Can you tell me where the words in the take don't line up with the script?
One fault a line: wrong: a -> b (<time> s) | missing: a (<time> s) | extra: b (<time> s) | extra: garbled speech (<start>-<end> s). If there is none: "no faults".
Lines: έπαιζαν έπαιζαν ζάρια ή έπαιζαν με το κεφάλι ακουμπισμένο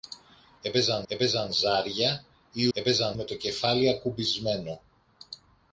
no faults